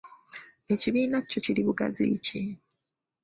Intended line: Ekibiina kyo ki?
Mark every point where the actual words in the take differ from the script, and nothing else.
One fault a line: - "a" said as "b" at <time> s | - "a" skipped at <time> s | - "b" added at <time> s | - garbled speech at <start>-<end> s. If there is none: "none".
- "kiri bugazi" added at 1.4 s